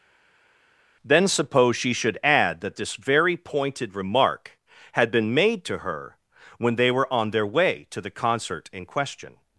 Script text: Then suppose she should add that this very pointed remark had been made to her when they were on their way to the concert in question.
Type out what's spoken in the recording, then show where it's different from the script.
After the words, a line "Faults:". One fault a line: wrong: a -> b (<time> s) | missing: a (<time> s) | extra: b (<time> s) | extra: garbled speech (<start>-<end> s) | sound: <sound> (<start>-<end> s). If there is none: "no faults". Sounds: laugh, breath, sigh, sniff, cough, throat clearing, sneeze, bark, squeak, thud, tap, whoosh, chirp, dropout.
Then suppose she should add that this very pointed remark had been made to her when they were on their way to the concert in question.
Faults:
no faults